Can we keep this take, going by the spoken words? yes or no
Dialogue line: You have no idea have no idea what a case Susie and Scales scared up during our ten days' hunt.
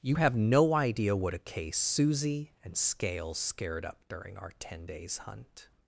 no